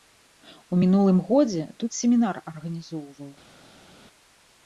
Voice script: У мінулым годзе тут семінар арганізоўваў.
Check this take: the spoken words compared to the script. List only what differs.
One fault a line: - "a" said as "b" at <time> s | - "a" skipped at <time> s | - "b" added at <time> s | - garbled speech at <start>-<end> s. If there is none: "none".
none